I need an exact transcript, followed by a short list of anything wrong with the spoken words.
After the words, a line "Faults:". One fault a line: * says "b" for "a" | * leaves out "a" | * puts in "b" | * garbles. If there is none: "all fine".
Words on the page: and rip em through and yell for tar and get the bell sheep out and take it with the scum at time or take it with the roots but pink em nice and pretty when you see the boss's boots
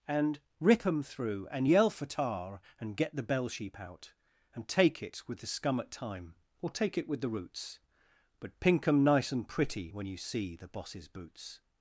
and rip em through and yell for tar and get the bell sheep out and take it with the scum at time or take it with the roots but pink em nice and pretty when you see the boss's boots
Faults:
all fine